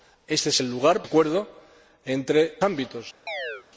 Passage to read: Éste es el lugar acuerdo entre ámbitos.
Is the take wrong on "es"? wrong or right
right